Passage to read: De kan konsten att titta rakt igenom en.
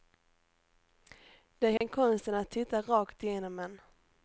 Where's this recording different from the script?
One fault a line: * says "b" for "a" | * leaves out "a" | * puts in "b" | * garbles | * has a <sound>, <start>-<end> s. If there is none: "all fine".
* has a dropout, 1.8-1.8 s